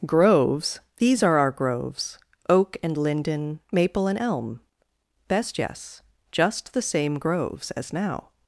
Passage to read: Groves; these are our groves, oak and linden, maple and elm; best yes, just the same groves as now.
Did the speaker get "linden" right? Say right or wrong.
right